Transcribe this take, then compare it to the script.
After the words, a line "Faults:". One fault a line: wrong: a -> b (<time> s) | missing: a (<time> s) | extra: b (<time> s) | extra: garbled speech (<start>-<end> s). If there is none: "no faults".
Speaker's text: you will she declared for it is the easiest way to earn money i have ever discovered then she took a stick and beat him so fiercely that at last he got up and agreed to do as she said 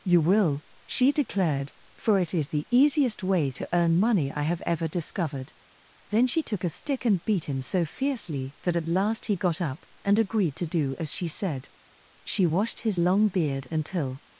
you will she declared for it is the easiest way to earn money i have ever discovered then she took a stick and beat him so fiercely that at last he got up and agreed to do as she said she washed his long beard until
Faults:
extra: she washed his long beard until (12.2 s)